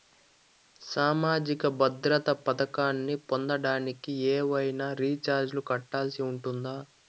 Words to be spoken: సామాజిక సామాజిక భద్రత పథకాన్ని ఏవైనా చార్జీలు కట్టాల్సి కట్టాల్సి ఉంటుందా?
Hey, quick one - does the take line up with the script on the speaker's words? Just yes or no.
no